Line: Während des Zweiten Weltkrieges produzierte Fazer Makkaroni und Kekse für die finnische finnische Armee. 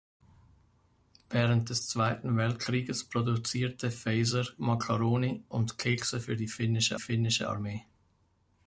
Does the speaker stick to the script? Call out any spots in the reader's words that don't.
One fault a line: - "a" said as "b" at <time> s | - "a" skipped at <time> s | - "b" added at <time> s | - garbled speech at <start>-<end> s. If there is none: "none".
none